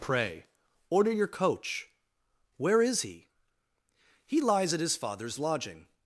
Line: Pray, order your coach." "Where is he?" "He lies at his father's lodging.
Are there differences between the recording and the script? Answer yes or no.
no